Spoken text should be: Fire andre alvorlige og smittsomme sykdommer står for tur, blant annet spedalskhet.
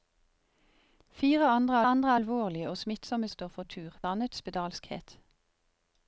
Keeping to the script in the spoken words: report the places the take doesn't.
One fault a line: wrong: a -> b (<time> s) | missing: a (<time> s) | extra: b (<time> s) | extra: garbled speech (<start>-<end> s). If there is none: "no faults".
extra: andre (1.8 s)
missing: sykdommer (3.3 s)
missing: blant (4.0 s)